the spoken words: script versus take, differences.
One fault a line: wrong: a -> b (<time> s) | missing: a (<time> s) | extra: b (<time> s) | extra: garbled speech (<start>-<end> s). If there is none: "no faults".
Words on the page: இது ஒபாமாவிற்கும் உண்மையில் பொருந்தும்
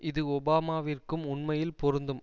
no faults